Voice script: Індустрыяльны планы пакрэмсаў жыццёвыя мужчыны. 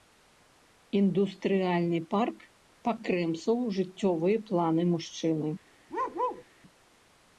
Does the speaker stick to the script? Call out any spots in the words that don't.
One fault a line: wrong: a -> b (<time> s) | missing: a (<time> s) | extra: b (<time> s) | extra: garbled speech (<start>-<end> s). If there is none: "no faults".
wrong: планы -> парк (2.1 s)
extra: планы (4.5 s)